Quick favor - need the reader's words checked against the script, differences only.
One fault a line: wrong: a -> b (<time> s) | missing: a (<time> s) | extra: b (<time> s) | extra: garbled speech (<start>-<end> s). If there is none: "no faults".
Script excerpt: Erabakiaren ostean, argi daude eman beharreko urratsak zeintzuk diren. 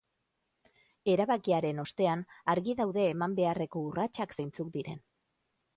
no faults